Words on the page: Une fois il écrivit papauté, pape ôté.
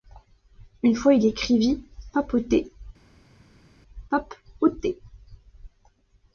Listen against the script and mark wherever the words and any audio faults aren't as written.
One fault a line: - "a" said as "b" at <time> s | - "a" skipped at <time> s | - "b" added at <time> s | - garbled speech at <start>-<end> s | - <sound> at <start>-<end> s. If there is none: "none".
none